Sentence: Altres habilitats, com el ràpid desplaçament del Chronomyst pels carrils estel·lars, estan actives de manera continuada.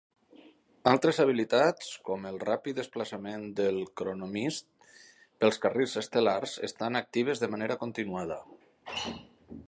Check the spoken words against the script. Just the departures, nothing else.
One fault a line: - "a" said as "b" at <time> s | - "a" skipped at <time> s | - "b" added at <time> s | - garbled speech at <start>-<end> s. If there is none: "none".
none